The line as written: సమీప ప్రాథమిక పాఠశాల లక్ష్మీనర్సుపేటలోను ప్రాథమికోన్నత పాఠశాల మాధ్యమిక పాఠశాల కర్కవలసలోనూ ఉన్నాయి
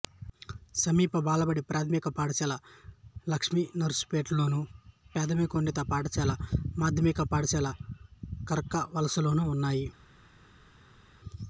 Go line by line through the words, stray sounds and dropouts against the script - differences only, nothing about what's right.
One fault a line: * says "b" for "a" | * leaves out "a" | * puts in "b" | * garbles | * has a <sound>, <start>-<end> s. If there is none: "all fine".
* puts in "బాలబడి"